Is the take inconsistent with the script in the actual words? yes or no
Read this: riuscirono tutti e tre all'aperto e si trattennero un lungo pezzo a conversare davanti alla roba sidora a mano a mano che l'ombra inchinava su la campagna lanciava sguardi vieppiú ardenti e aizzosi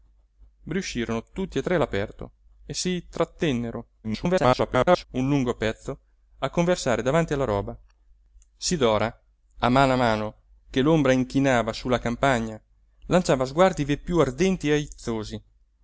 yes